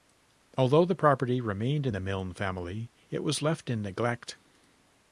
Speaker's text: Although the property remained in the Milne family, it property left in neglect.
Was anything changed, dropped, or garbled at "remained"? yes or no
no